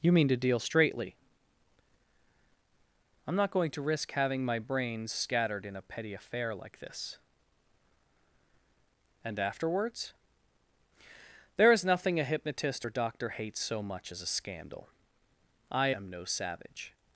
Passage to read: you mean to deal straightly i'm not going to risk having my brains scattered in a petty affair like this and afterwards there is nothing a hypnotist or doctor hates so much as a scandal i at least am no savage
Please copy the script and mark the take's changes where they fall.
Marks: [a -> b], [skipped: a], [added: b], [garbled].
you mean to deal straightly i'm not going to risk having my brains scattered in a petty affair like this and afterwards there is nothing a hypnotist or doctor hates so much as a scandal i [skipped: at least] am no savage